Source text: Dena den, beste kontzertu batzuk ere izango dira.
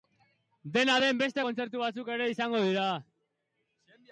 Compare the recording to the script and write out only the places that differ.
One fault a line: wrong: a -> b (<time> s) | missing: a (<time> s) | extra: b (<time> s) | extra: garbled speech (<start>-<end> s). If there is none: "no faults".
no faults